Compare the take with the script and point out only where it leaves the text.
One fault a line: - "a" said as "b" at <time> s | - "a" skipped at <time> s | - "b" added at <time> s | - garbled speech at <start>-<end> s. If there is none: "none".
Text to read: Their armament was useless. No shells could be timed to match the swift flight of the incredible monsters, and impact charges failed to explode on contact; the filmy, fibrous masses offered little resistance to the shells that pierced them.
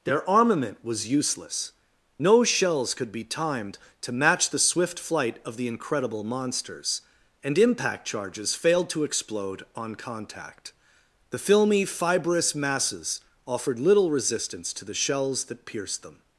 none